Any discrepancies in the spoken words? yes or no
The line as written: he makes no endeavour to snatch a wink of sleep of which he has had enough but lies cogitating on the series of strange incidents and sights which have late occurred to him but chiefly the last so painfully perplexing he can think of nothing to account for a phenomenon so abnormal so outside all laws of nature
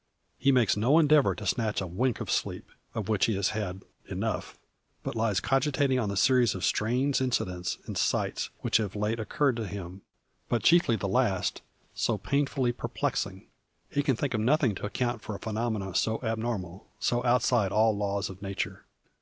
no